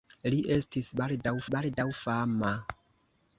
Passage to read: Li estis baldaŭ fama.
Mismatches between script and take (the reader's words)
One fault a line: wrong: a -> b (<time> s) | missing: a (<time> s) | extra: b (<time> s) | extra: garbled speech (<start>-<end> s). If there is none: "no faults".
extra: baldaŭ (1.6 s)